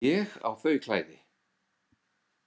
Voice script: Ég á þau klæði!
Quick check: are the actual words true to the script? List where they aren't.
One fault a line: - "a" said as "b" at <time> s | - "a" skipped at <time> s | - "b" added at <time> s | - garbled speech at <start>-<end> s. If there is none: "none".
none